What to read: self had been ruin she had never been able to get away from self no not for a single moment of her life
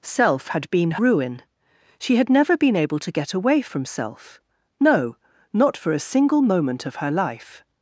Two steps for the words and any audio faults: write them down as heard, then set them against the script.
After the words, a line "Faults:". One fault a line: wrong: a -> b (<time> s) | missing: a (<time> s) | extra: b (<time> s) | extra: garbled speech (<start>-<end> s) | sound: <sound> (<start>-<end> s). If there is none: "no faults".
self had been ruin she had never been able to get away from self no not for a single moment of her life
Faults:
no faults